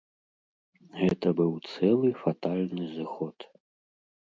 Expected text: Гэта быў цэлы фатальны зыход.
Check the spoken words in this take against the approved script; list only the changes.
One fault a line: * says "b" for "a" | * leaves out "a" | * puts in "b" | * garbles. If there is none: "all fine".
all fine